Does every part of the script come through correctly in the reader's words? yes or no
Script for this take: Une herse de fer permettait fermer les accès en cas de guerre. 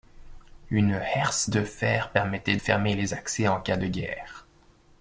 yes